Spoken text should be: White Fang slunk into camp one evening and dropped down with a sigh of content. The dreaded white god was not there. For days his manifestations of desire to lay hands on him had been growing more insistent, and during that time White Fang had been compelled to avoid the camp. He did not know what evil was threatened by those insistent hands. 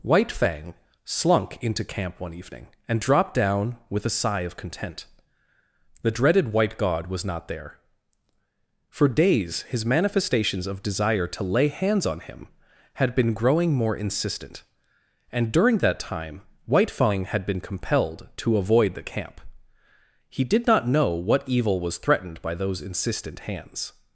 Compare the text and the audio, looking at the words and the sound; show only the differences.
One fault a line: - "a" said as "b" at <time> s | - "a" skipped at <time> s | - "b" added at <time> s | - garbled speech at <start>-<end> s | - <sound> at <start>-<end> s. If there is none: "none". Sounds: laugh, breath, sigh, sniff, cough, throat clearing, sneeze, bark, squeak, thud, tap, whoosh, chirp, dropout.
none